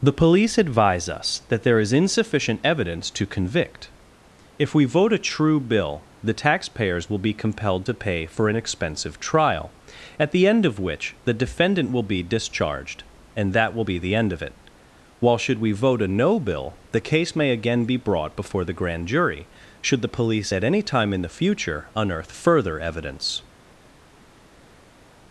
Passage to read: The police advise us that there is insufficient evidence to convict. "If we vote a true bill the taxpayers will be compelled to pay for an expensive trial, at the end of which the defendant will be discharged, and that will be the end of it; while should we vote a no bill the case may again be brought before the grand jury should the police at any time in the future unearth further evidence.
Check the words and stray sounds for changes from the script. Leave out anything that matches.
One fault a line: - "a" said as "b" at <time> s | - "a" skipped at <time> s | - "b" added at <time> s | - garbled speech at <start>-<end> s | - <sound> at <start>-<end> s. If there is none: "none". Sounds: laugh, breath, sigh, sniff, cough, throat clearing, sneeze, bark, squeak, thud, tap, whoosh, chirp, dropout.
none